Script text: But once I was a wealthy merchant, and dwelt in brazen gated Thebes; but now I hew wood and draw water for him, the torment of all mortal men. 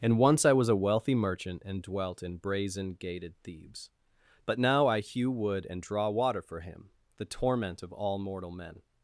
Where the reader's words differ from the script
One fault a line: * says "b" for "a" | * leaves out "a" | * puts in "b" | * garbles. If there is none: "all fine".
* says "And" for "But"